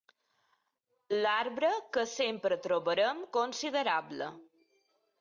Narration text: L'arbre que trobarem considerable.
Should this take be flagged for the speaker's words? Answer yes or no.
yes